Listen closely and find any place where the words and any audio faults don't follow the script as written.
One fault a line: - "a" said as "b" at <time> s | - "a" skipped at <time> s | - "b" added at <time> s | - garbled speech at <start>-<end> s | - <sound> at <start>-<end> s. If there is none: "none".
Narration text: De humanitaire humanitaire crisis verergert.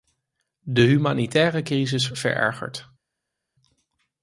- "humanitaire" skipped at 1.6 s